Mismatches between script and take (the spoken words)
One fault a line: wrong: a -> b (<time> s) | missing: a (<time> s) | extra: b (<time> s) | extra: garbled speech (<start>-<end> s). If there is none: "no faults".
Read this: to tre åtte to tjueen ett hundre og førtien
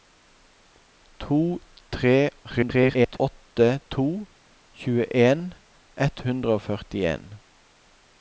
extra: garbled speech (2.4-3.2 s)